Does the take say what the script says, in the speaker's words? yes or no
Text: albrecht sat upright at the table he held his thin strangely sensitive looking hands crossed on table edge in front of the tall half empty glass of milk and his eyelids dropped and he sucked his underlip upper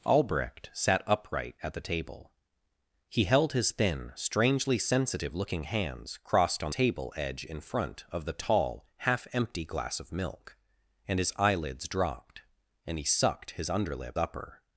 yes